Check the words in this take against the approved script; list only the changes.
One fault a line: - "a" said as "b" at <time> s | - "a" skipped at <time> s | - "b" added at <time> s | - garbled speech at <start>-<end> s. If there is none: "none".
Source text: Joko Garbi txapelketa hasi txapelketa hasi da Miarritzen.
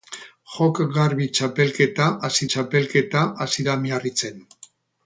none